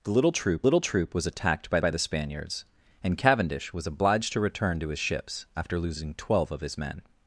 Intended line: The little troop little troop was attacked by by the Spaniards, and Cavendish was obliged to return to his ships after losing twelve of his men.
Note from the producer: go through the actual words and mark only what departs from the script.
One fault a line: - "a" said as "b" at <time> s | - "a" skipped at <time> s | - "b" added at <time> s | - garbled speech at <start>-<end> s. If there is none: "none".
none